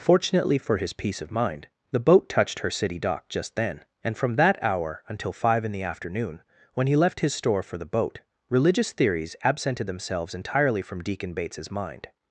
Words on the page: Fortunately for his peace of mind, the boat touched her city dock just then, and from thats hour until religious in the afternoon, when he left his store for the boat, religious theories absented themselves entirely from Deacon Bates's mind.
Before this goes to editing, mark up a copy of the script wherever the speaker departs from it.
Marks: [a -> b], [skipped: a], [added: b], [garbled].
Fortunately for his peace of mind, the boat touched her city dock just then, and from [thats -> that] hour until [religious -> five] in the afternoon, when he left his store for the boat, religious theories absented themselves entirely from Deacon Bates's mind.